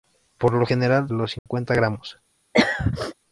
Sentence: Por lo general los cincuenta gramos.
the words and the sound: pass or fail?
fail